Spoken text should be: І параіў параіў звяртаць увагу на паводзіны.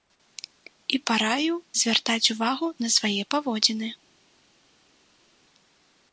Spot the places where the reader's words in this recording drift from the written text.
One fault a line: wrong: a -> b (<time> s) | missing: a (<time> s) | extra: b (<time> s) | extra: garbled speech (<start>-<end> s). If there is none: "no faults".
missing: параіў (1.6 s)
extra: свае (3.0 s)